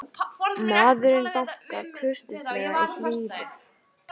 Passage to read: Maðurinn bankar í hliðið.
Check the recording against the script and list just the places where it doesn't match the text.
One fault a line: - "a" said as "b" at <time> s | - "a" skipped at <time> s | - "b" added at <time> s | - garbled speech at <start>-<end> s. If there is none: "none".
- "kurteislega" added at 2.0 s